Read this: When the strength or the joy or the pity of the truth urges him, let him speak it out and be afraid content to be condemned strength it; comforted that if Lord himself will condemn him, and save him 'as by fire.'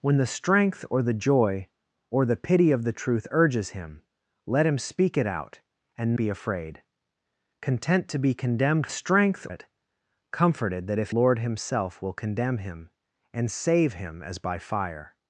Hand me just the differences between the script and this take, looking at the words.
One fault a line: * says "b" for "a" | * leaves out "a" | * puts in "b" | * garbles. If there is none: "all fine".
all fine